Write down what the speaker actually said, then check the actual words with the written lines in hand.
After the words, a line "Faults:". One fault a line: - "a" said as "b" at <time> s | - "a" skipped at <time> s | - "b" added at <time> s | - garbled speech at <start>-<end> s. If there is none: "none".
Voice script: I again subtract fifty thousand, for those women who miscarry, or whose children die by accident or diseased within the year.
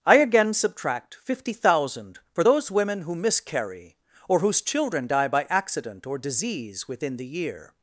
I again subtract fifty thousand, for those women who miscarry, or whose children die by accident or disease within the year.
Faults:
- "diseased" said as "disease" at 6.2 s